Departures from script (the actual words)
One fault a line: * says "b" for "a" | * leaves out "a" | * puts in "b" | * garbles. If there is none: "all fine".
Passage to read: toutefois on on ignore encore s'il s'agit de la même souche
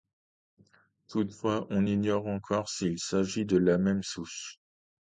* leaves out "on"